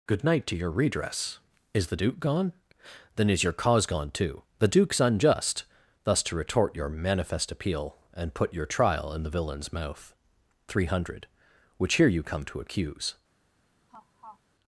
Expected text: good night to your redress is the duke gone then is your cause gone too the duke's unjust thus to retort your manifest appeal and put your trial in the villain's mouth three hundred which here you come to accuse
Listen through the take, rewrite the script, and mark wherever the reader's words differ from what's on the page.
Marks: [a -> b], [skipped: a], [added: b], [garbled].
good night to your redress is the duke gone then is your cause gone too the duke's unjust thus to retort your manifest appeal and put your trial in the villain's mouth three hundred which here you come to accuse